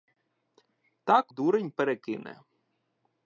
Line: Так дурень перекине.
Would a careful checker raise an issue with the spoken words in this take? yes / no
no